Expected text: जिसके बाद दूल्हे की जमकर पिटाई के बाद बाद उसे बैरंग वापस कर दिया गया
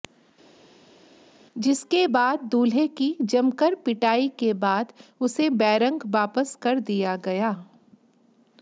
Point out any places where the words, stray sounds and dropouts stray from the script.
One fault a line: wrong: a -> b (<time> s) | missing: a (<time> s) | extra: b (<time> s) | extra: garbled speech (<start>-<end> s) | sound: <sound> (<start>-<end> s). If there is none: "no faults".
missing: बाद (4.9 s)